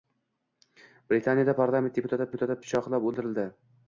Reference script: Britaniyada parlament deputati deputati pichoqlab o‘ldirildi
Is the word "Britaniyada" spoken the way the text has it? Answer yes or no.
yes